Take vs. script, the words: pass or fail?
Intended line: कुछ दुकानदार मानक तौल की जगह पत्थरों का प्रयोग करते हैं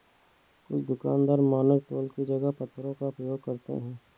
pass